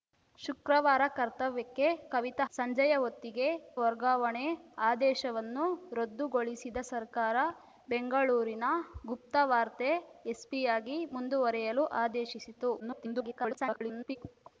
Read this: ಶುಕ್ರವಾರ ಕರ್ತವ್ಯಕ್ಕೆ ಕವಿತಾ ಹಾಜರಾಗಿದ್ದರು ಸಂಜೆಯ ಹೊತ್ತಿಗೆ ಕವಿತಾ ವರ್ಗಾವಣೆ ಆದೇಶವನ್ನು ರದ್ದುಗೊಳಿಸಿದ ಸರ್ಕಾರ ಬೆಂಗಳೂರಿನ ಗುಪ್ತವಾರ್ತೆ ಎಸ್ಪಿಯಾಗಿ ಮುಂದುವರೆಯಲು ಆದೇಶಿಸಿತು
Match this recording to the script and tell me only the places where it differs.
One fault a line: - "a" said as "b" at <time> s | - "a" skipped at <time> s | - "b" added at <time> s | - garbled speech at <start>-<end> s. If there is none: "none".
- "ಹಾಜರಾಗಿದ್ದರು" skipped at 2.5 s
- "ಕವಿತಾ" skipped at 3.5 s
- garbled speech at 12.8-14.2 s